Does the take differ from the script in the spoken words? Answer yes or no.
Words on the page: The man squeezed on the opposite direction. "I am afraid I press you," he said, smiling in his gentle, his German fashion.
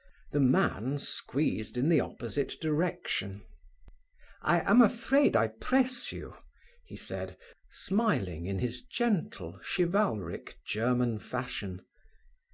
yes